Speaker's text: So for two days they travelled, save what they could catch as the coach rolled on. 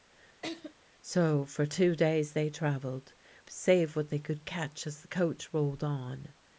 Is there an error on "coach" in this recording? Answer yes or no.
no